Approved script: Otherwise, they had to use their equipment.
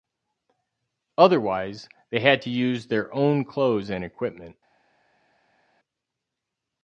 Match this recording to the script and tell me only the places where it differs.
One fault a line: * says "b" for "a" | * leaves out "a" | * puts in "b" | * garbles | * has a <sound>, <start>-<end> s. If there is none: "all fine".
* puts in "own clothes and"